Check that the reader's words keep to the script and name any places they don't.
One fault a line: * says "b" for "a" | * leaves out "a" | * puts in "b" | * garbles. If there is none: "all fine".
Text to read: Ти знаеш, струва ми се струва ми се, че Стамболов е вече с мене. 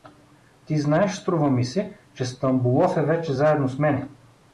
* leaves out "струва ми се"
* puts in "заедно"